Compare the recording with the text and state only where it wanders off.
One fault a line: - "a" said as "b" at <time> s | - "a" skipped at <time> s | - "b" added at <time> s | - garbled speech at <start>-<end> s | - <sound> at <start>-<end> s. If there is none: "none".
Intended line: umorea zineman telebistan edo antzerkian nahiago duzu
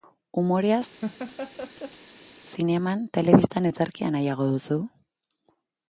- laugh at 1.0-2.3 s
- "edo" skipped at 3.7 s